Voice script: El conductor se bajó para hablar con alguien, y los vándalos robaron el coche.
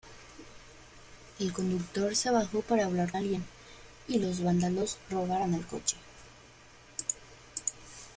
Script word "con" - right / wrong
wrong